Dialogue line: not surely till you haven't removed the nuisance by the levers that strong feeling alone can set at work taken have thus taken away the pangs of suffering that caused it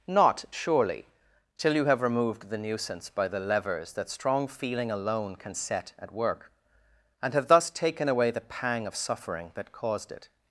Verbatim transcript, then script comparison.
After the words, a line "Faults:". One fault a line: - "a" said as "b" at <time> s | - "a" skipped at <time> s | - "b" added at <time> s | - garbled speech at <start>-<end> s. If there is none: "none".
not surely till you have removed the nuisance by the levers that strong feeling alone can set at work and have thus taken away the pang of suffering that caused it
Faults:
- "haven't" said as "have" at 1.9 s
- "taken" said as "and" at 7.2 s
- "pangs" said as "pang" at 8.4 s